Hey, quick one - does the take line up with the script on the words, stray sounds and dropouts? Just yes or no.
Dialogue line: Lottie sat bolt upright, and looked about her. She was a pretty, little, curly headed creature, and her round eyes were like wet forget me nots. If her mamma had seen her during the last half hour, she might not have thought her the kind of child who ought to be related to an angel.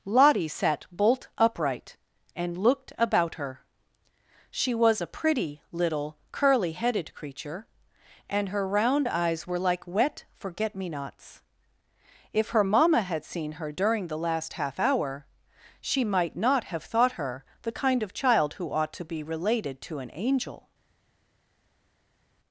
yes